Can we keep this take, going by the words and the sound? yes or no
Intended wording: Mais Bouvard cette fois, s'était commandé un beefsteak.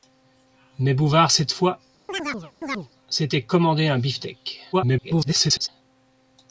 no